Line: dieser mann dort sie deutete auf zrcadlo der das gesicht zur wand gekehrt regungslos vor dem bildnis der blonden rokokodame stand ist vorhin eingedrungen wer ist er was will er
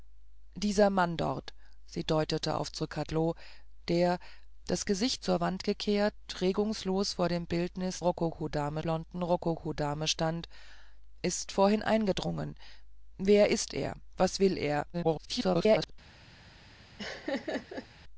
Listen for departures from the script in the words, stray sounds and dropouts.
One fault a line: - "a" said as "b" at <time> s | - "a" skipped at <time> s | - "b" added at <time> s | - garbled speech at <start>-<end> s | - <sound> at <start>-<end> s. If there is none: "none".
- "der" said as "rokokodame" at 8.0 s
- garbled speech at 14.9-15.9 s
- laugh at 17.0-17.9 s